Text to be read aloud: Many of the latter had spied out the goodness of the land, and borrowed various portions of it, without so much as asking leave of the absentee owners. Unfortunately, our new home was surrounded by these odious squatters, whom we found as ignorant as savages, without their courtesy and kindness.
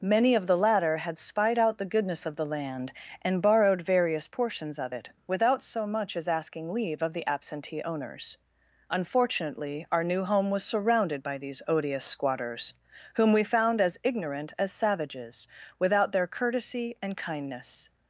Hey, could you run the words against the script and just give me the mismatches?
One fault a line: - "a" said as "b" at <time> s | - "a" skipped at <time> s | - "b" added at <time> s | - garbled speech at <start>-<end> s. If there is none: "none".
none